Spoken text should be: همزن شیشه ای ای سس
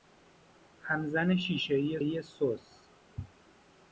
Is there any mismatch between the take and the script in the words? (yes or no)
no